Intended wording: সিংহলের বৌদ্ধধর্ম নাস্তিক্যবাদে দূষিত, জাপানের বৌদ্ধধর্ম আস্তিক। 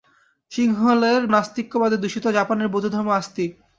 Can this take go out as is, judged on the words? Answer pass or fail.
fail